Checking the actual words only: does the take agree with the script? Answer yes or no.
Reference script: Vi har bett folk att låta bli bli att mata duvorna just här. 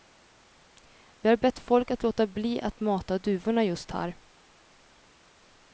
no